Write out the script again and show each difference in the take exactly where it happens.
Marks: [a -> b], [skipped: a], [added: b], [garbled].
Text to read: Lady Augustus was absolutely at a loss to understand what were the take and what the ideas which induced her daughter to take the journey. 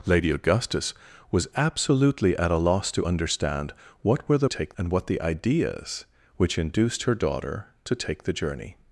Lady Augustus was absolutely at a loss to understand what were the take and what the ideas which induced her daughter to take the journey.